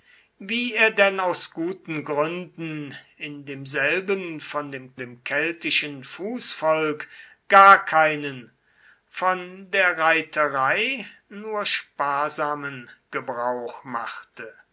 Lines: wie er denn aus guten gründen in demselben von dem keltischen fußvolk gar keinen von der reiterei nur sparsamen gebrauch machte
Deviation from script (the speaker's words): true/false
true